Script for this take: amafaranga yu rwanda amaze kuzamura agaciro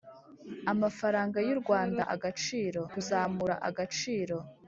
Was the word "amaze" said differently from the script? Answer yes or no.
yes